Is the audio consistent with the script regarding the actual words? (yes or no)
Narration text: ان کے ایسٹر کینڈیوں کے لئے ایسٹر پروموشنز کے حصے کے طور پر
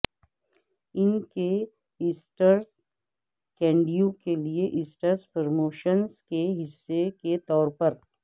yes